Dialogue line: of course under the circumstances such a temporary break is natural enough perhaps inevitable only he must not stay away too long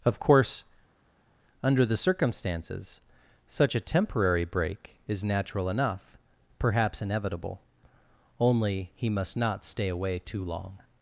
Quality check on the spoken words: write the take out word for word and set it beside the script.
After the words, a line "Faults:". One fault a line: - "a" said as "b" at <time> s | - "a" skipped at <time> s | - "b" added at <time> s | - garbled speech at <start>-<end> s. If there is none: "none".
of course under the circumstances such a temporary break is natural enough perhaps inevitable only he must not stay away too long
Faults:
none